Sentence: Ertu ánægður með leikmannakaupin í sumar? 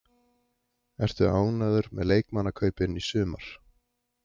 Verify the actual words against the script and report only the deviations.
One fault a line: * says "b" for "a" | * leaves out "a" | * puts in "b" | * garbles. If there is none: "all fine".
all fine